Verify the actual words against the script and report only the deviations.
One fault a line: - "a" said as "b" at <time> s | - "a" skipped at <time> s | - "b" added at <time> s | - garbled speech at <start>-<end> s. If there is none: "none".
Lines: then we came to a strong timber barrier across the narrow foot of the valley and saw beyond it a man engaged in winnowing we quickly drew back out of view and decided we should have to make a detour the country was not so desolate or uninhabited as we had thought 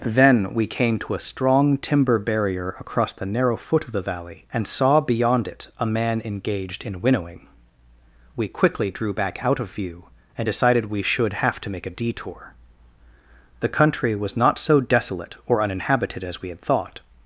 none